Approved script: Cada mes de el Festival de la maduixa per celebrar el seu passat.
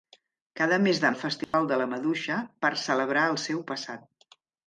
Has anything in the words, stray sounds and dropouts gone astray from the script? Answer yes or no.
yes